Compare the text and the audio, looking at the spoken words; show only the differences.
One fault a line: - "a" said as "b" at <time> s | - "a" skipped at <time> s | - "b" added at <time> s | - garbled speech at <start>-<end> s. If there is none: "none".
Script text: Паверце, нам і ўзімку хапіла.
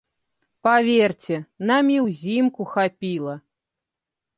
none